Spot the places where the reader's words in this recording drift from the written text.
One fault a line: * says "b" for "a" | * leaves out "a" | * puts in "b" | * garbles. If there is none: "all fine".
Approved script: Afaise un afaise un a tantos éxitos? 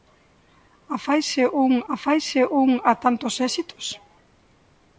all fine